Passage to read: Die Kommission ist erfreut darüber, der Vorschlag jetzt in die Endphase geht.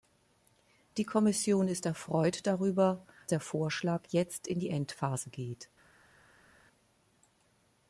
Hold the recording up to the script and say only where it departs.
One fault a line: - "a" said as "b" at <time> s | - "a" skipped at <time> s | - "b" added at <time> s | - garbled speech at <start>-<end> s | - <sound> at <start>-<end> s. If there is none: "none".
none